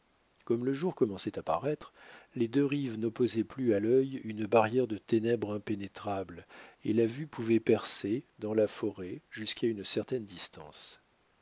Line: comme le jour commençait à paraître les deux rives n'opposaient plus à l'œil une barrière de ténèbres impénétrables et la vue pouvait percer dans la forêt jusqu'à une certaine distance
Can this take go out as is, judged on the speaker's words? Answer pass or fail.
pass